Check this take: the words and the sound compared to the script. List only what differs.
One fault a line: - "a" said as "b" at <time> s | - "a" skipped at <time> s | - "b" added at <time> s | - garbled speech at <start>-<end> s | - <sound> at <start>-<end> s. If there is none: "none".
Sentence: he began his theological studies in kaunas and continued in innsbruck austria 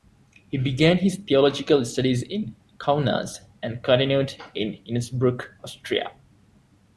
none